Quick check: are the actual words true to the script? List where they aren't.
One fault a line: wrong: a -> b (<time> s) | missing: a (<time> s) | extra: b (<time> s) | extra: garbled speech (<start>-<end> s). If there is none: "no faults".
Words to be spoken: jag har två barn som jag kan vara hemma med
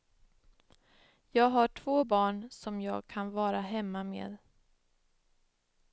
no faults